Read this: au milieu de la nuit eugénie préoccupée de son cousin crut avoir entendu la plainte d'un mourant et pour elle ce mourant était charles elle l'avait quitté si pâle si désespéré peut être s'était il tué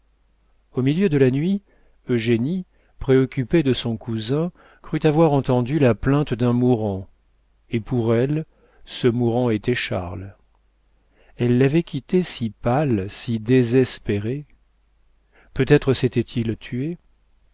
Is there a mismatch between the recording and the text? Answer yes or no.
no